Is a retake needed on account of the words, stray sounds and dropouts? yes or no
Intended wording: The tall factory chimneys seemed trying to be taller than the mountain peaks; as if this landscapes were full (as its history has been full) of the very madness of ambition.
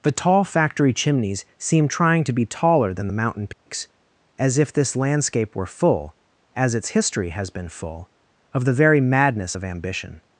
yes